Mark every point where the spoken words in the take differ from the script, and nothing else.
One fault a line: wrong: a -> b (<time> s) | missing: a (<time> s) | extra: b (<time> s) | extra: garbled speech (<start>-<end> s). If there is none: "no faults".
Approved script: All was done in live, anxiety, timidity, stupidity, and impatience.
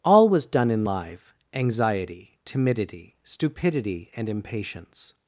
no faults